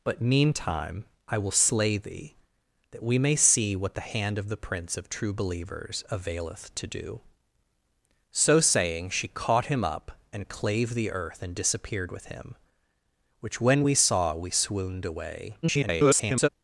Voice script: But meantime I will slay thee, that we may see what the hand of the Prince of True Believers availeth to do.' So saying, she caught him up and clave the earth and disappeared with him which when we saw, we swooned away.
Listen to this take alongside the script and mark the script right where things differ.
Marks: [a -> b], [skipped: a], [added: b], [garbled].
But meantime I will slay thee, that we may see what the hand of the Prince of True Believers availeth to do.' So saying, she caught him up and clave the earth and disappeared with him which when we saw, we swooned away. [garbled]